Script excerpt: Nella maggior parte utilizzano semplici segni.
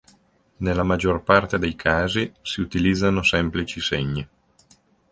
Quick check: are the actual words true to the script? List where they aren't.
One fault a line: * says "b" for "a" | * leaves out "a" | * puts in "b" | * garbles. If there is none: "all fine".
* puts in "dei casi si"